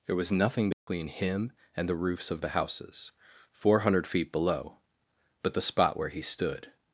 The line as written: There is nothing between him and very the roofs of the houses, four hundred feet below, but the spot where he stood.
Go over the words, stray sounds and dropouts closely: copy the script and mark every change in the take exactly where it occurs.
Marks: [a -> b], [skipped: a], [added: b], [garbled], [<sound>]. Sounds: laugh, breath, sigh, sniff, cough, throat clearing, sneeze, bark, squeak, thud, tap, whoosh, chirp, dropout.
There [is -> was] nothing between [dropout] him and [skipped: very] the roofs of the houses, four hundred feet below, but the spot where he stood.